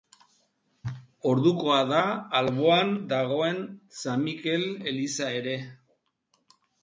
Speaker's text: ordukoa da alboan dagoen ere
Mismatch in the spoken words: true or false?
true